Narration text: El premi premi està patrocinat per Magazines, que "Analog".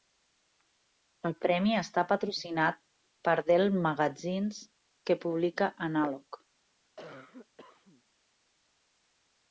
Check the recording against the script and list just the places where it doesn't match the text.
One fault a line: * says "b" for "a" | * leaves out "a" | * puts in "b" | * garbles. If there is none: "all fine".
* leaves out "premi"
* puts in "Dell"
* puts in "publica"